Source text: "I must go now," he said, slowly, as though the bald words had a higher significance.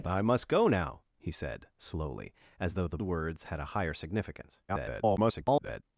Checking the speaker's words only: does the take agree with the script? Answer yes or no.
no